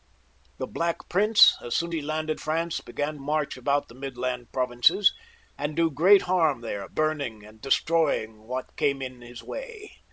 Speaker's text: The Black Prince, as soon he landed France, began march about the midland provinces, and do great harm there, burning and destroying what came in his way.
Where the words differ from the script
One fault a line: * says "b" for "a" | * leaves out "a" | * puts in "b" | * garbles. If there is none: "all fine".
all fine